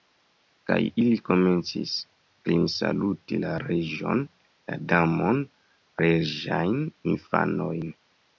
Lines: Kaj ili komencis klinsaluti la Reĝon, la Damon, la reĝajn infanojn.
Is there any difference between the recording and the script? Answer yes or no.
yes